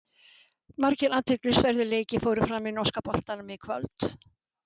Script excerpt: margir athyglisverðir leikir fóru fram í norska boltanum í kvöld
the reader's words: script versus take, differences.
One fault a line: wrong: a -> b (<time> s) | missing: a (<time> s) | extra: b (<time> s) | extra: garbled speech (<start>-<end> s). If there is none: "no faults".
no faults